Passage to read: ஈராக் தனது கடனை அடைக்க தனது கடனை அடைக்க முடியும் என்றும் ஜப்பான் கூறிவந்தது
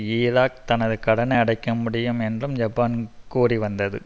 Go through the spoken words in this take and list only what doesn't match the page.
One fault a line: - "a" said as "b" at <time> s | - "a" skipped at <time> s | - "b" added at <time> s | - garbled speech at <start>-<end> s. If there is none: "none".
- "தனது கடனை அடைக்க" skipped at 1.7 s